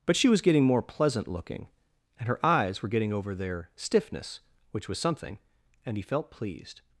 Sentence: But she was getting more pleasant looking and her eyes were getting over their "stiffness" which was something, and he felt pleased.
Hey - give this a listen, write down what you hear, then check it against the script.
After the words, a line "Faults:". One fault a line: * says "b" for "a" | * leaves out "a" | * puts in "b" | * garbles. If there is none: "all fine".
But she was getting more pleasant looking and her eyes were getting over their "stiffness" which was something, and he felt pleased.
Faults:
all fine